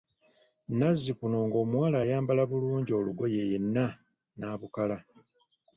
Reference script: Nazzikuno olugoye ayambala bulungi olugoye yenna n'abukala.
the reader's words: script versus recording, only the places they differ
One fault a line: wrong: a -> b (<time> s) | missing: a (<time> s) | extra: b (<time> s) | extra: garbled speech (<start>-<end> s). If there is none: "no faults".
wrong: olugoye -> ng'omuwala (1.5 s)